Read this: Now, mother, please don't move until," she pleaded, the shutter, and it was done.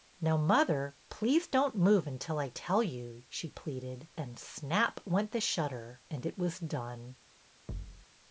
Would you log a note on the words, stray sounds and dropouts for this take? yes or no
yes